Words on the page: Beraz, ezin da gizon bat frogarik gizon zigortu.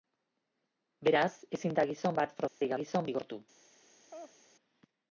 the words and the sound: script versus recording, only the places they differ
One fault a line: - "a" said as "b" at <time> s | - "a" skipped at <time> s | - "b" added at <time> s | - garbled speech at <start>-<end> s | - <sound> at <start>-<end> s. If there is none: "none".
- dropout at 2.5-2.6 s
- laugh at 4.1-4.4 s